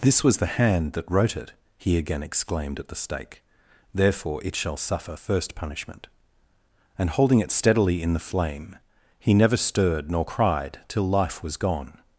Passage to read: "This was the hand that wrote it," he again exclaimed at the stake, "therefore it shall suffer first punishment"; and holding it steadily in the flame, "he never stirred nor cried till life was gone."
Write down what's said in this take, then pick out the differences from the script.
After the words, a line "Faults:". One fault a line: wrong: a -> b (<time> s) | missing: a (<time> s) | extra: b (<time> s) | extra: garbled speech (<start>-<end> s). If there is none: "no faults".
"This was the hand that wrote it," he again exclaimed at the stake, "therefore it shall suffer first punishment"; and holding it steadily in the flame, "he never stirred nor cried till life was gone."
Faults:
no faults